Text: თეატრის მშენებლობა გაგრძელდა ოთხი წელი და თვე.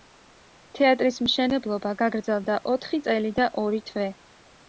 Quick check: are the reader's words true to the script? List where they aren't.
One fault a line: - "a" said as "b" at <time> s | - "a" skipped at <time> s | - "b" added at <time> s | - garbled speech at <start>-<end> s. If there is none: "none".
- "ორი" added at 3.6 s